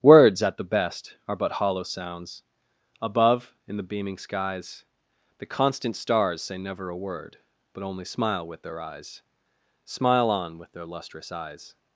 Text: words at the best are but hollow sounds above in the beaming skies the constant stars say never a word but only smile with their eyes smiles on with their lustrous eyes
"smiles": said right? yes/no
no